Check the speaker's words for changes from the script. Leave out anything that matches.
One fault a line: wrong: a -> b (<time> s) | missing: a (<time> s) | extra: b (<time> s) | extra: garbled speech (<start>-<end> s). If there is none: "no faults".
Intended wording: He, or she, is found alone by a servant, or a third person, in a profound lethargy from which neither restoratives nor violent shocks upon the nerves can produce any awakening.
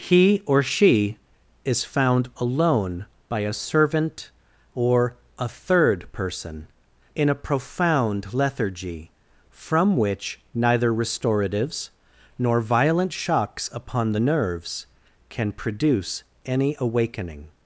no faults